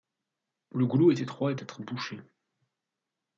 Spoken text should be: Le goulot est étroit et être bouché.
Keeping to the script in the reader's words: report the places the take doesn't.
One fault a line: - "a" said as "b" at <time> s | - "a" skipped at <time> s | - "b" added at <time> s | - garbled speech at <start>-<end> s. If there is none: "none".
none